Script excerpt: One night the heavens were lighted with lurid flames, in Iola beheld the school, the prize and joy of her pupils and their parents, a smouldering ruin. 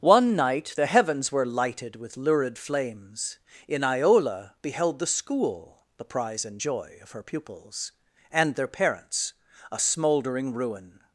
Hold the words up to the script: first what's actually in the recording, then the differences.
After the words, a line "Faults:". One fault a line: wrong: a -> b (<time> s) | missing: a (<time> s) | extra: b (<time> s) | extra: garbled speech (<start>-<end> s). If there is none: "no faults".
One night the heavens were lighted with lurid flames, in Iola beheld the school, the prize and joy of her pupils and their parents, a smouldering ruin.
Faults:
no faults